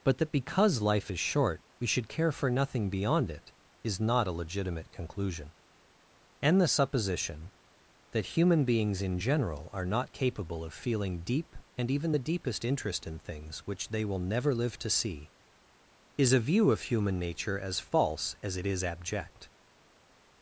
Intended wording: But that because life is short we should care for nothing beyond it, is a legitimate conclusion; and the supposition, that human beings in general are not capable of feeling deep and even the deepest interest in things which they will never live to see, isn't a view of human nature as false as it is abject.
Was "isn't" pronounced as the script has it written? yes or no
no